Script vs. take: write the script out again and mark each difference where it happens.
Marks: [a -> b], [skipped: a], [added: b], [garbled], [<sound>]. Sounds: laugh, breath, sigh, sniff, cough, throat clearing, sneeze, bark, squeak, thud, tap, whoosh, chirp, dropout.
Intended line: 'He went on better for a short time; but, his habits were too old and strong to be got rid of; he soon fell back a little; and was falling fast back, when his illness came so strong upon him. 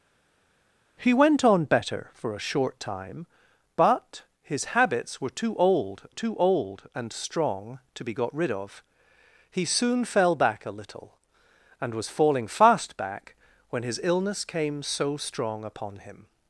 'He went on better for a short time; but, his habits were too old [added: too old] and strong to be got rid of; he soon fell back a little; and was falling fast back, when his illness came so strong upon him.